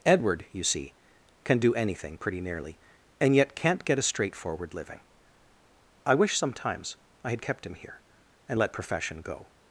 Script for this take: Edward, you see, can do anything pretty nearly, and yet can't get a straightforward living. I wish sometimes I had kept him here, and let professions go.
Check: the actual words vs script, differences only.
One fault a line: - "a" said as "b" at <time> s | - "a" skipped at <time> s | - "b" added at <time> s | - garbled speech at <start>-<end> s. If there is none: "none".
- "professions" said as "profession" at 8.7 s